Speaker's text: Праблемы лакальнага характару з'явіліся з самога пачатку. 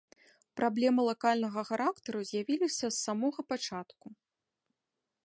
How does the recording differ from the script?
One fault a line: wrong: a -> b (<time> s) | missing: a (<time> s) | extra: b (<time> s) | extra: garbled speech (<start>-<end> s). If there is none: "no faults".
no faults